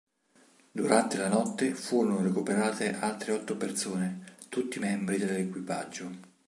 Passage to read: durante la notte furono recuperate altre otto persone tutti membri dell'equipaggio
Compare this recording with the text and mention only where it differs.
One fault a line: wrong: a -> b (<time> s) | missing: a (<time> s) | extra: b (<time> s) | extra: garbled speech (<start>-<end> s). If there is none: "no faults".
no faults